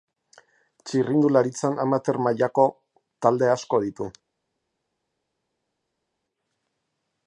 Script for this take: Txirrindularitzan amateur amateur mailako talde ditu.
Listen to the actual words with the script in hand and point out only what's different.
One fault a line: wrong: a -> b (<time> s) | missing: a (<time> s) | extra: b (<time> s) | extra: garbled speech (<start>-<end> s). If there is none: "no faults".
missing: amateur (2.2 s)
extra: asko (3.6 s)